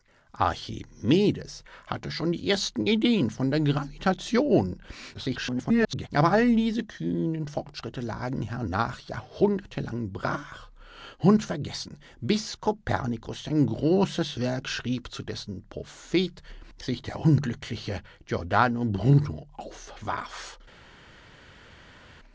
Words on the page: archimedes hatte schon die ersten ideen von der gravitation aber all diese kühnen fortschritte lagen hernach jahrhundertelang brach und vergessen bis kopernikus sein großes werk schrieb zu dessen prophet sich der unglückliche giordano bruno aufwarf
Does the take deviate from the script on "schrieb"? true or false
false